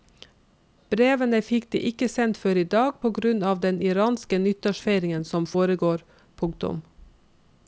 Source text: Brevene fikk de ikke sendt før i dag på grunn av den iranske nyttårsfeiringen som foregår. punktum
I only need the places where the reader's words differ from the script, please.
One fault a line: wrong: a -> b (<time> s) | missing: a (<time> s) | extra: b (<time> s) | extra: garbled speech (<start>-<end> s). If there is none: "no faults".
no faults